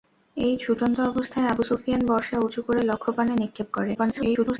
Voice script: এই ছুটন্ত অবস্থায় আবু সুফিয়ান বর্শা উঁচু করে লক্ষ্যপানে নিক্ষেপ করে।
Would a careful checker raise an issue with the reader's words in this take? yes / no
yes